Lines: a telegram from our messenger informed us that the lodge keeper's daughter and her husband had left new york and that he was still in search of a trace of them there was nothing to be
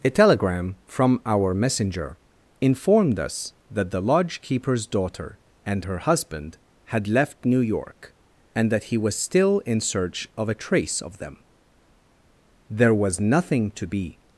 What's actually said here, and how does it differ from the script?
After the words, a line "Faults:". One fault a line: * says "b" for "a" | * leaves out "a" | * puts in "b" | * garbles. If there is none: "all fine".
a telegram from our messenger informed us that the lodge keeper's daughter and her husband had left new york and that he was still in search of a trace of them there was nothing to be
Faults:
all fine